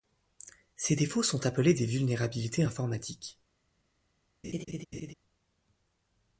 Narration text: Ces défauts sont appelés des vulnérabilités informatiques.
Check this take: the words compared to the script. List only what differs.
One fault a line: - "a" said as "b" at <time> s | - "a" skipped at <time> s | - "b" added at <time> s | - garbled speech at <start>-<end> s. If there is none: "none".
none